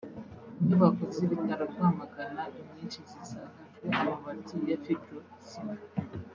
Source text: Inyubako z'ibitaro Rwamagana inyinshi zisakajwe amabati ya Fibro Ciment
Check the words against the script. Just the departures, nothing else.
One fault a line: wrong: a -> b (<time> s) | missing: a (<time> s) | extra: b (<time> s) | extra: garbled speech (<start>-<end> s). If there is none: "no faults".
no faults